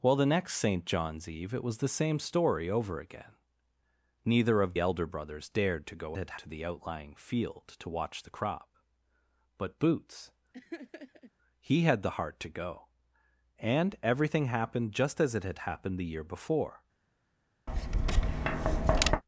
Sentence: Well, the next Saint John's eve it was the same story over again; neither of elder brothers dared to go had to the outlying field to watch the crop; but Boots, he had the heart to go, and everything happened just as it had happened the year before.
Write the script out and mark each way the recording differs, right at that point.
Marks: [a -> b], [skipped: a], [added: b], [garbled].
Well, the next Saint John's eve it was the same story over again; neither of elder brothers dared to go had to the outlying field to watch the crop; but Boots, he had the heart to go, and everything happened just as it had happened the year before.